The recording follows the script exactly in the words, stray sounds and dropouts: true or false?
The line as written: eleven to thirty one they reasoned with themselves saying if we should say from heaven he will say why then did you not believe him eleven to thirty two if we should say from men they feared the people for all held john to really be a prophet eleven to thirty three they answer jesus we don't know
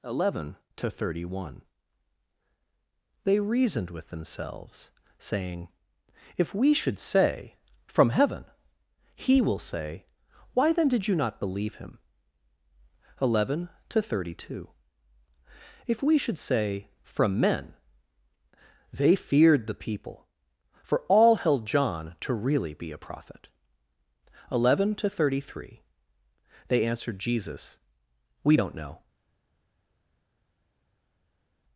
false